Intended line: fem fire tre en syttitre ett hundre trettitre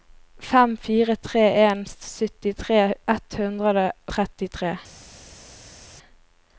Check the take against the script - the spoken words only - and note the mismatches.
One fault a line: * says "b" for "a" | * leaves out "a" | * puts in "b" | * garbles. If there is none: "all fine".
all fine